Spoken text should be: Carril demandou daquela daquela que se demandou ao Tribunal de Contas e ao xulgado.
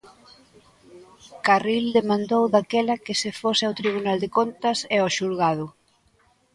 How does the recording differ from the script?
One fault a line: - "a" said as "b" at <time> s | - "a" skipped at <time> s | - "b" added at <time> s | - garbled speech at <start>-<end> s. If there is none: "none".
- "daquela" skipped at 3.0 s
- "demandou" said as "fose" at 3.4 s